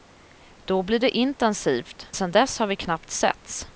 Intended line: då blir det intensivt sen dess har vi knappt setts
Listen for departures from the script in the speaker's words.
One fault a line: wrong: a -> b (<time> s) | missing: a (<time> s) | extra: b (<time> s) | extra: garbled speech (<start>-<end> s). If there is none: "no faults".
no faults